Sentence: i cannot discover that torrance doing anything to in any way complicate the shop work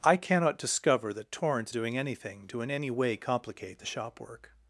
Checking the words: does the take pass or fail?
pass